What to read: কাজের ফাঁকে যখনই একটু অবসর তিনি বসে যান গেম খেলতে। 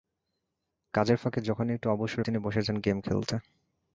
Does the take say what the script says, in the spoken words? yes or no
yes